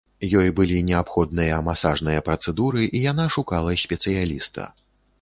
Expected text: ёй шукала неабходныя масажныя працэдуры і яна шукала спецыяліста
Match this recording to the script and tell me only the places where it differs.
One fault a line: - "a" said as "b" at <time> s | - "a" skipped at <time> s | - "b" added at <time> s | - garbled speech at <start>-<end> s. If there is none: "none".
- "шукала" said as "былі" at 0.6 s